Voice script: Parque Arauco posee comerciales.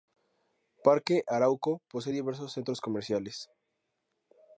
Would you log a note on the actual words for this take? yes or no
yes